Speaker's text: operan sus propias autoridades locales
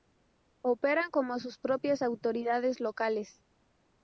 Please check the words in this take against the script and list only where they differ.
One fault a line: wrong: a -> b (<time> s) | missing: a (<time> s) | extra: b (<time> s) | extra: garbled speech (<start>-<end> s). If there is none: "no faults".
extra: como (1.1 s)